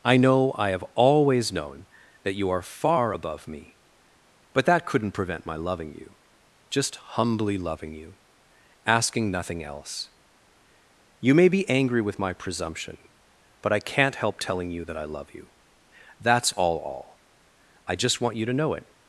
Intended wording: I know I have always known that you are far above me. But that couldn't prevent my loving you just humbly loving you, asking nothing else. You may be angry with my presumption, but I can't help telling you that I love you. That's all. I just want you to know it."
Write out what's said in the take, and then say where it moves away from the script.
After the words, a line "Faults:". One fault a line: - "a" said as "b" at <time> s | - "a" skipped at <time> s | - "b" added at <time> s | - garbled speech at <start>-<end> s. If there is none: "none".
I know I have always known that you are far above me. But that couldn't prevent my loving you just humbly loving you, asking nothing else. You may be angry with my presumption, but I can't help telling you that I love you. That's all all. I just want you to know it."
Faults:
- "all" added at 16.8 s